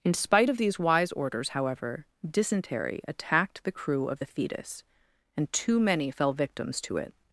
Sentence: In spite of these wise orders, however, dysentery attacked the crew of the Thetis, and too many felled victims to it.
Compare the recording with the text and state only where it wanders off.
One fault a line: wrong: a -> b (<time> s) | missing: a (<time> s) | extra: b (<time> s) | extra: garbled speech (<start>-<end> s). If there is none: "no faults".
wrong: felled -> fell (6.1 s)